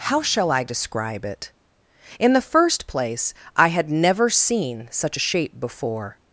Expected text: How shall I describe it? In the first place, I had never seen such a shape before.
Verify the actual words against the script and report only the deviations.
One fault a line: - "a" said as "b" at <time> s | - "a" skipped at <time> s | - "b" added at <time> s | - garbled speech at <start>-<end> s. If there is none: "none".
none